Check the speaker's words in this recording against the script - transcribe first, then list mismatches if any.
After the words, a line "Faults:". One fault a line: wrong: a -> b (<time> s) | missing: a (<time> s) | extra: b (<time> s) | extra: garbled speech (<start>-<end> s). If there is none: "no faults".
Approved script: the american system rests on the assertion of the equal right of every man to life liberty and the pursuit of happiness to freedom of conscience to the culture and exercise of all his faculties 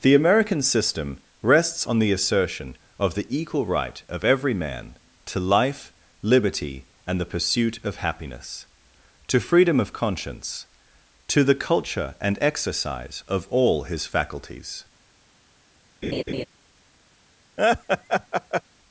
the american system rests on the assertion of the equal right of every man to life liberty and the pursuit of happiness to freedom of conscience to the culture and exercise of all his faculties
Faults:
no faults